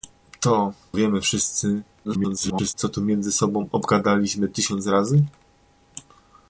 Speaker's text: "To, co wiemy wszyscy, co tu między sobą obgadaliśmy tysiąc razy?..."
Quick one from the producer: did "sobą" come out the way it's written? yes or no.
yes